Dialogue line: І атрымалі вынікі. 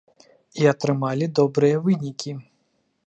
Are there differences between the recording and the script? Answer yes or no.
yes